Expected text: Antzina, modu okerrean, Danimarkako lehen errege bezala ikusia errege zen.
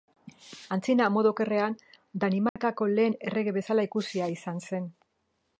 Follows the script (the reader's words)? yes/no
no